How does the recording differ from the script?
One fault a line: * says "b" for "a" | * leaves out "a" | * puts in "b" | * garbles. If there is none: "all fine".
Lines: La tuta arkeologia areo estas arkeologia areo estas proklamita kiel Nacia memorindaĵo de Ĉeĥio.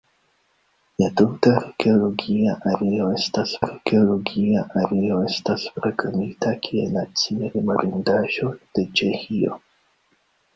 all fine